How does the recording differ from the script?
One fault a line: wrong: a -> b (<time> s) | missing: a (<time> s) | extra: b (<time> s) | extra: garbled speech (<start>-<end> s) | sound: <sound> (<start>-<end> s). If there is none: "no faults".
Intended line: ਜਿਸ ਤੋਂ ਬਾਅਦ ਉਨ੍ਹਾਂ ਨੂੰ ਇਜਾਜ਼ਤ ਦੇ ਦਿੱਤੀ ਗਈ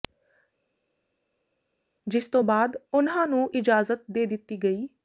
no faults